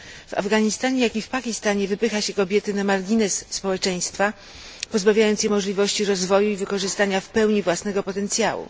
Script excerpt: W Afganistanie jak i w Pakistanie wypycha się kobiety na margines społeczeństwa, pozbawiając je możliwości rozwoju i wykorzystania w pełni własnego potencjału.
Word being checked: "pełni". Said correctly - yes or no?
yes